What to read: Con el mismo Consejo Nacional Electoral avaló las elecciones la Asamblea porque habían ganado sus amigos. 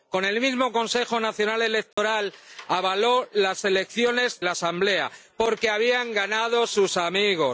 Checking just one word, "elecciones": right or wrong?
right